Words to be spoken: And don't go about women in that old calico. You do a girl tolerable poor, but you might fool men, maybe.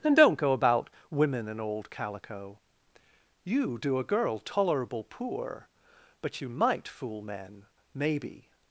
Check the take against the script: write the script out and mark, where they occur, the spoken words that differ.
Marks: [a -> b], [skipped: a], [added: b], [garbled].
And don't go about women in [skipped: that] old calico. You do a girl tolerable poor, but you might fool men, maybe.